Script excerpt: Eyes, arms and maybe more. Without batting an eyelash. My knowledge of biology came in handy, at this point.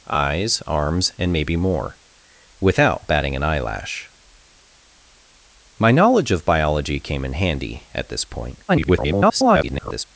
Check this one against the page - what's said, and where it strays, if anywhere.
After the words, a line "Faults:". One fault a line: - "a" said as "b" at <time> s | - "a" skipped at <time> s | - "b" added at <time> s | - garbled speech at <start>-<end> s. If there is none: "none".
Eyes, arms and maybe more. Without batting an eyelash. My knowledge of biology came in handy, at this point. [garbled]
Faults:
- garbled speech at 8.7-10.0 s